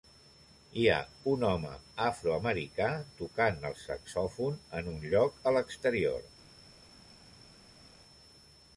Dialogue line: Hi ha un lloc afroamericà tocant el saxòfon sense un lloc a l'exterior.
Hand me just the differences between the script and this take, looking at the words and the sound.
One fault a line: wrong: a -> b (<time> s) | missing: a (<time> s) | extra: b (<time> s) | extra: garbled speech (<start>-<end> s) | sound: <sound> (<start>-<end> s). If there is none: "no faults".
wrong: lloc -> home (1.5 s)
wrong: sense -> en (4.8 s)